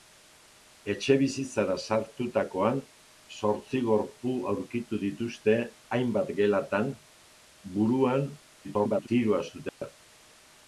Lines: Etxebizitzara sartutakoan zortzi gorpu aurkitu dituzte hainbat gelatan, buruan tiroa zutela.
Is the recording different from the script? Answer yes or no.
yes